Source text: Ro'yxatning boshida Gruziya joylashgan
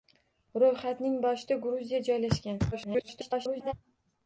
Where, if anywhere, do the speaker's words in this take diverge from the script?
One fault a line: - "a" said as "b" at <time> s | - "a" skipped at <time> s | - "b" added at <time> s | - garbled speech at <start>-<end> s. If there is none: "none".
- garbled speech at 2.7-3.7 s